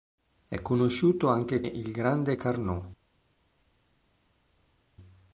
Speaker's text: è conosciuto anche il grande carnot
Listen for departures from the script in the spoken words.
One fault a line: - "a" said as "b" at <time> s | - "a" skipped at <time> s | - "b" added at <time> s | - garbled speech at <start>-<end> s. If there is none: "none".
none